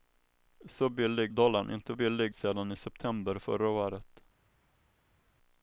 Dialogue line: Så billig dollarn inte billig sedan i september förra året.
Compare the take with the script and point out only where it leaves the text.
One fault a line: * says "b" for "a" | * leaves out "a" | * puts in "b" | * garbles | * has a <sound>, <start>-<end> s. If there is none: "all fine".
all fine